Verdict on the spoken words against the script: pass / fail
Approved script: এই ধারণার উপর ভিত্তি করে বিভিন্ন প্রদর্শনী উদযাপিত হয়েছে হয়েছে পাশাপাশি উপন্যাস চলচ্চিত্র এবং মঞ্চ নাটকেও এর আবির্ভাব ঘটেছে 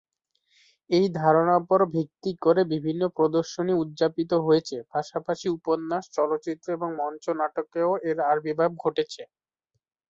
fail